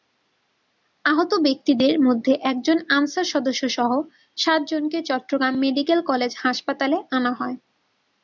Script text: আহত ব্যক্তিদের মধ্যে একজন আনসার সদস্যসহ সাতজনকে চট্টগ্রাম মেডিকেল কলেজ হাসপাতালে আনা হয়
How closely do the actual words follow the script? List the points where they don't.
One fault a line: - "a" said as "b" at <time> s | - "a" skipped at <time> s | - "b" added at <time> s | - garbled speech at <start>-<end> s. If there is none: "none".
none